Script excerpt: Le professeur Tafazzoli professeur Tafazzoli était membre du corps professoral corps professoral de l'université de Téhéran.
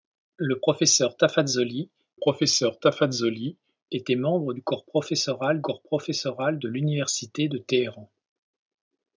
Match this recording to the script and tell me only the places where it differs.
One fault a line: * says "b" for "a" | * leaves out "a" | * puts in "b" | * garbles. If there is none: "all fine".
all fine